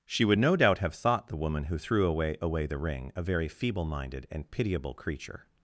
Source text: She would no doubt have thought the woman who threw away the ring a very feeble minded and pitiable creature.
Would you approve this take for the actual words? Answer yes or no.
no